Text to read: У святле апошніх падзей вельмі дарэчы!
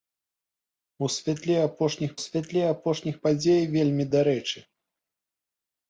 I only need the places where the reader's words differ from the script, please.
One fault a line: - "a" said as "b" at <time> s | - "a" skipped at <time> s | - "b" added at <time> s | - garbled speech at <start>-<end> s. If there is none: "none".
- "святле апошніх" added at 2.2 s